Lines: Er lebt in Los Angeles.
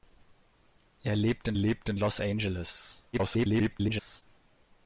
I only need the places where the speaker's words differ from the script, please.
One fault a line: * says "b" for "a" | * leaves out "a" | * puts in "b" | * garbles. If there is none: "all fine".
* puts in "lebt in"
* garbles